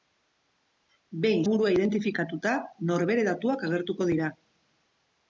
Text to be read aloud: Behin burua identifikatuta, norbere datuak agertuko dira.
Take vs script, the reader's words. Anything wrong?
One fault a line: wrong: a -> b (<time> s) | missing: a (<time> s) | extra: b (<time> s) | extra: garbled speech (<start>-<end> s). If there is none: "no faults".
no faults